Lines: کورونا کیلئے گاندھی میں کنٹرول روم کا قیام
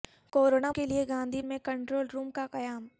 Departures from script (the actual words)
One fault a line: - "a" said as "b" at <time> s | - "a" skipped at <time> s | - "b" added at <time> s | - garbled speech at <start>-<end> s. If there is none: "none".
none